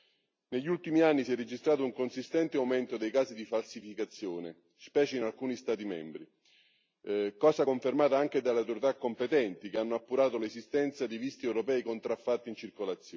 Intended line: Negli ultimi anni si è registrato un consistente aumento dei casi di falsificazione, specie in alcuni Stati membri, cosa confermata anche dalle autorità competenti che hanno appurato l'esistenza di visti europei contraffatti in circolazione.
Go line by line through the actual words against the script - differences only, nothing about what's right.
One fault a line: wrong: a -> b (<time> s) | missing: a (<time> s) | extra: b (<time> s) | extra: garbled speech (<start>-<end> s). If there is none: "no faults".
no faults